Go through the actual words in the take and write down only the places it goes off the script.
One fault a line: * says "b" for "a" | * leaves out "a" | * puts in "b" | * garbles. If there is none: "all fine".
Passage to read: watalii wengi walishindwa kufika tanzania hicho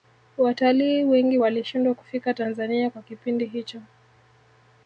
* puts in "kwa kipindi"